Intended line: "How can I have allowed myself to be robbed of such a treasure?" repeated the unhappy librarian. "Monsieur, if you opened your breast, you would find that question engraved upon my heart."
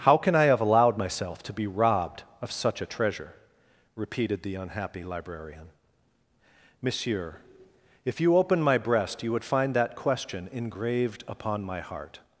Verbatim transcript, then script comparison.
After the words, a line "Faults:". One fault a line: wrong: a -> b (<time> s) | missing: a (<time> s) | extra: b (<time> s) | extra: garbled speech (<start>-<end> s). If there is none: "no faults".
"How can I have allowed myself to be robbed of such a treasure?" repeated the unhappy librarian. "Monsieur, if you opened my breast, you would find that question engraved upon my heart."
Faults:
wrong: your -> my (8.6 s)